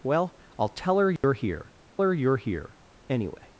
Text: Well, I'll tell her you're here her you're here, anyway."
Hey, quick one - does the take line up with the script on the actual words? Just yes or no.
yes